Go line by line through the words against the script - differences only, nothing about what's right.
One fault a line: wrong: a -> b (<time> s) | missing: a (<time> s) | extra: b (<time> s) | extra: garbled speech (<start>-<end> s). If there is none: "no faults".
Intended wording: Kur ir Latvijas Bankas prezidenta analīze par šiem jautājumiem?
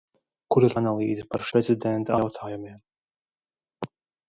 missing: Latvijas Bankas prezidenta (0.8 s)
wrong: šiem -> prezidenta (1.6 s)